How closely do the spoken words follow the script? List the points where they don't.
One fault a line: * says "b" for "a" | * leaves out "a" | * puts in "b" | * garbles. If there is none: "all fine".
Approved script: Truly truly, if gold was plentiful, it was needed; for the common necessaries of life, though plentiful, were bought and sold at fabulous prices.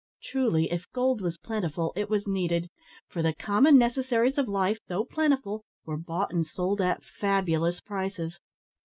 * leaves out "truly"